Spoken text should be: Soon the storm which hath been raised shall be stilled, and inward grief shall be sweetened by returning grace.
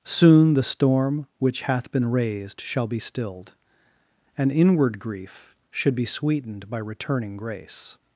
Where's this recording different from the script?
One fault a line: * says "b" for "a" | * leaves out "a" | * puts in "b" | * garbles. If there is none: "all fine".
* says "should" for "shall"